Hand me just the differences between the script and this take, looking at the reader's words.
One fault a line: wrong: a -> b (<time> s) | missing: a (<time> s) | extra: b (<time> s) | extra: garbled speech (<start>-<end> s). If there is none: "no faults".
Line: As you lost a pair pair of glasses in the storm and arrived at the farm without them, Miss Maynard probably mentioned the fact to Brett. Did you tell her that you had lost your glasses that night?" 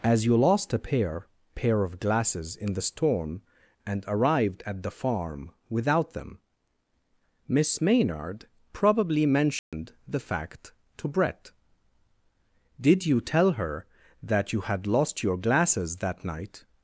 no faults